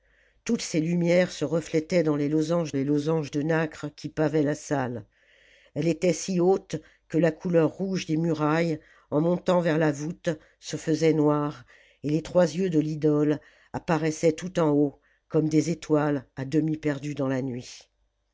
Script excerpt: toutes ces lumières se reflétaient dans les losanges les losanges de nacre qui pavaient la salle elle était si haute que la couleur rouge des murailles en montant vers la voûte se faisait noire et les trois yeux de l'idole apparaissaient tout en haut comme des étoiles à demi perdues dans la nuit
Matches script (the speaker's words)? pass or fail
pass